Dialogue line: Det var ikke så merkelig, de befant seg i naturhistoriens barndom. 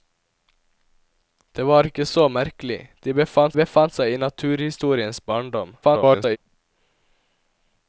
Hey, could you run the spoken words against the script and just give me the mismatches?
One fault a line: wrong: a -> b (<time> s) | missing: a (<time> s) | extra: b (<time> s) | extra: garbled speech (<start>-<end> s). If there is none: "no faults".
extra: befant (3.6 s)
extra: garbled speech (5.8-6.4 s)